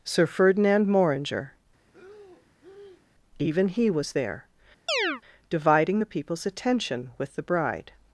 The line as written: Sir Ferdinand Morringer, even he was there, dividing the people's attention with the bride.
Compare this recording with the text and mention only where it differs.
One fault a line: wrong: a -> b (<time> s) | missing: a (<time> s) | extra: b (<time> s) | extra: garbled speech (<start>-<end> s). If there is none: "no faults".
no faults